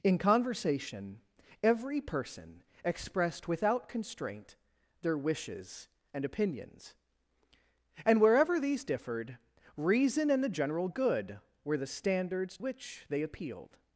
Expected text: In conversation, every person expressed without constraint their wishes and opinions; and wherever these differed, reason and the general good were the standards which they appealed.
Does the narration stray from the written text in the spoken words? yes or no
no